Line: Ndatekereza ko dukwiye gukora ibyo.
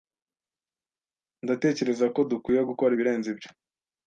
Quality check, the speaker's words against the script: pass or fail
fail